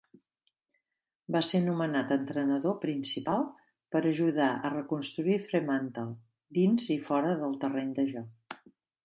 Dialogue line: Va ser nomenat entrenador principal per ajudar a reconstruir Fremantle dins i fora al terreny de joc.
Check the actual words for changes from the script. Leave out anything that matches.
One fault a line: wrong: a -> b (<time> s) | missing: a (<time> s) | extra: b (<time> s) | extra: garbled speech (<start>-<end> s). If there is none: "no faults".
wrong: al -> del (7.5 s)